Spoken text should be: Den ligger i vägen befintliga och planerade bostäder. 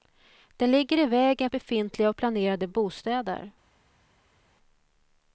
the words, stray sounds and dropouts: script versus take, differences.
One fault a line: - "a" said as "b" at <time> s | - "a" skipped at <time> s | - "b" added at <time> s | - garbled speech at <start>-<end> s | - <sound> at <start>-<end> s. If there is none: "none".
none